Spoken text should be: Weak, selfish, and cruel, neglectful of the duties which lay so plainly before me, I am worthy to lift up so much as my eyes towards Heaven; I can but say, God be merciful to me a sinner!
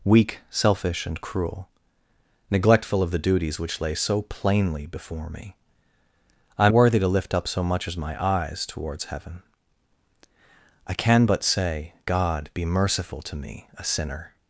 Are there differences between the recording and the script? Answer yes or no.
no